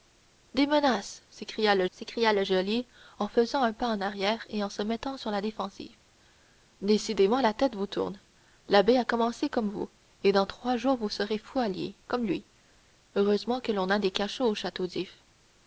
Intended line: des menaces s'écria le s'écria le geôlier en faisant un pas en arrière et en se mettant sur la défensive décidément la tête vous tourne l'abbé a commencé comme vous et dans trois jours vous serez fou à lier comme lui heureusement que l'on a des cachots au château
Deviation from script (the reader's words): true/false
false